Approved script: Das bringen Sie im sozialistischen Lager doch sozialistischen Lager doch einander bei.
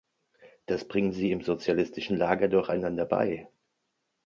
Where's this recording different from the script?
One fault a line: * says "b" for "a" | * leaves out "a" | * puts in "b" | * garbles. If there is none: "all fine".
* leaves out "sozialistischen Lager doch"